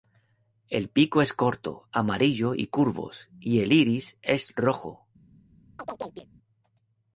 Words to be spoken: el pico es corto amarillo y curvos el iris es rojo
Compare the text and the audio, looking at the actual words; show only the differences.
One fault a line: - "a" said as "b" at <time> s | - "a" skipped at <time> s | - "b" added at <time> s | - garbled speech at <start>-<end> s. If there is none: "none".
- "y" added at 3.4 s